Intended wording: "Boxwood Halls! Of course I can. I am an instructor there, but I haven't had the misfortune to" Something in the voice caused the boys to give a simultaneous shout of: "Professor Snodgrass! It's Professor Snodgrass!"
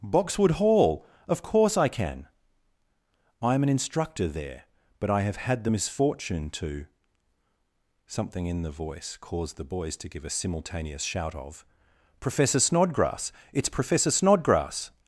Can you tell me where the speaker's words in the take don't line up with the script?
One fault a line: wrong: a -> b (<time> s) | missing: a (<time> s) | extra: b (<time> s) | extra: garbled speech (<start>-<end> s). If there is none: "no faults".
wrong: Halls -> Hall (0.5 s)
wrong: haven't -> have (5.2 s)